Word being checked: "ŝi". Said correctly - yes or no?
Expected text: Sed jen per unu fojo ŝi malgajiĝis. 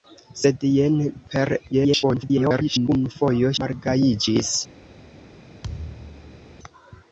no